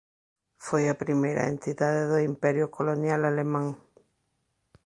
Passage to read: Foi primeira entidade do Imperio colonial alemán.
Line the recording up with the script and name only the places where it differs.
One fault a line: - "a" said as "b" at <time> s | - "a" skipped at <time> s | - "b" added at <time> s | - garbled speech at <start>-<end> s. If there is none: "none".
- "a" added at 0.9 s